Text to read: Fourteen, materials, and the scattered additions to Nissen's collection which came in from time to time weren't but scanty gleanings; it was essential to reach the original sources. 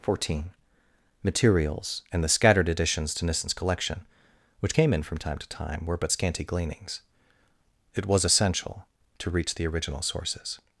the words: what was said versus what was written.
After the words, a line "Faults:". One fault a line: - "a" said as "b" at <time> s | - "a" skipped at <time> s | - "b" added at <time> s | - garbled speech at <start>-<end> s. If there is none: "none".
Fourteen, materials, and the scattered additions to Nissen's collection which came in from time to time were but scanty gleanings; it was essential to reach the original sources.
Faults:
- "weren't" said as "were" at 5.8 s